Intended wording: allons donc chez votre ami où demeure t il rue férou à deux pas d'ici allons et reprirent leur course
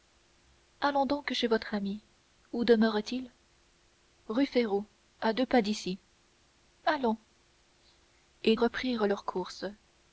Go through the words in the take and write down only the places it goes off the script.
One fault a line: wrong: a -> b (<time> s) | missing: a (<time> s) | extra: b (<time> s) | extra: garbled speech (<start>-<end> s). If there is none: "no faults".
no faults